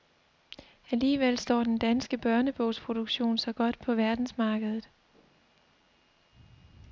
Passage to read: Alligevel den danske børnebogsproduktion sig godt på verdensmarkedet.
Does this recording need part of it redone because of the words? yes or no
yes